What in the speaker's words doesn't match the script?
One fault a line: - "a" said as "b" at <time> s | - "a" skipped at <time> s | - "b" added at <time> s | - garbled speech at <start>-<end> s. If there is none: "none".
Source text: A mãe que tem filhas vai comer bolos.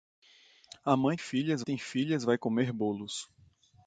- "que" said as "filhas" at 1.1 s